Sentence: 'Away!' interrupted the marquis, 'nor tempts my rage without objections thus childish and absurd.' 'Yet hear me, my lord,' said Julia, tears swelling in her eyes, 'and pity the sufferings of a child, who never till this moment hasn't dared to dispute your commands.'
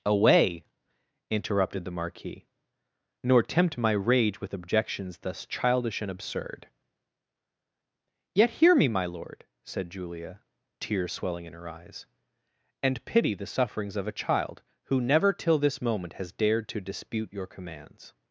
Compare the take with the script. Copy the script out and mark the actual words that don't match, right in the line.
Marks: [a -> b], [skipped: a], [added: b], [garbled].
'Away!' interrupted the marquis, 'nor [tempts -> tempt] my rage [without -> with] objections thus childish and absurd.' 'Yet hear me, my lord,' said Julia, tears swelling in her eyes, 'and pity the sufferings of a child, who never till this moment [hasn't -> has] dared to dispute your commands.'